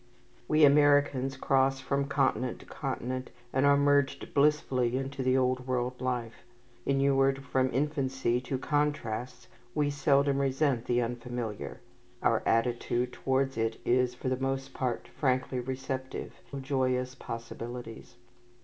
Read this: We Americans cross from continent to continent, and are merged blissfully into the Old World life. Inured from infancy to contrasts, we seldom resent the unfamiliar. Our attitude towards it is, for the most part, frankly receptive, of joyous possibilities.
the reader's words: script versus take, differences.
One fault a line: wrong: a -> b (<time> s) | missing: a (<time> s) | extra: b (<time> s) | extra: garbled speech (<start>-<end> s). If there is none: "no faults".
no faults